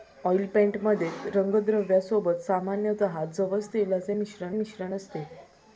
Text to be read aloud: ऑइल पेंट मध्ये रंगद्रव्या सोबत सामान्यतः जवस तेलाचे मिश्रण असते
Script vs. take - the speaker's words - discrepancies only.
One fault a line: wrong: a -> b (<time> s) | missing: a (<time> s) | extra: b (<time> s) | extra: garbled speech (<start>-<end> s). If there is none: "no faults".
extra: मिश्रण (4.5 s)